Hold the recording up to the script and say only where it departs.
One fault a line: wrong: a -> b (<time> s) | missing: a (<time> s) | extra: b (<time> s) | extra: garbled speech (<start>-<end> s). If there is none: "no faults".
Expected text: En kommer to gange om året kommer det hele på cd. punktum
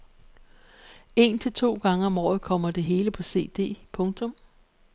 wrong: kommer -> til (1.4 s)